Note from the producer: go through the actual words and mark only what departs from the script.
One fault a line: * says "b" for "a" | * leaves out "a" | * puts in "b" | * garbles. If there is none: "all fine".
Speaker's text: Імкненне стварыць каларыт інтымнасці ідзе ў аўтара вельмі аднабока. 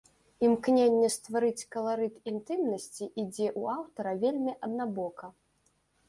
all fine